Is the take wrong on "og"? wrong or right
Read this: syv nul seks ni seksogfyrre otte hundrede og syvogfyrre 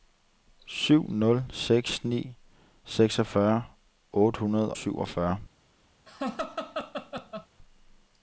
wrong